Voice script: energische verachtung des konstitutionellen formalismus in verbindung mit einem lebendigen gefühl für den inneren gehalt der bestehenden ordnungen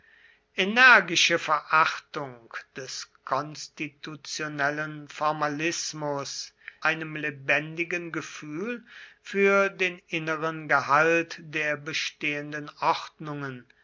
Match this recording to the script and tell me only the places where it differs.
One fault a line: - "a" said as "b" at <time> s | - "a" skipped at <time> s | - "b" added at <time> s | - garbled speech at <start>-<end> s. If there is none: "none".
- "in verbindung mit" skipped at 6.5 s